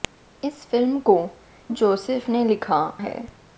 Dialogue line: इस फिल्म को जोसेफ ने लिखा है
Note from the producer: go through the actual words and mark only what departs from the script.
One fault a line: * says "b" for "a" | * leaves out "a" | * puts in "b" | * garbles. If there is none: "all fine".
all fine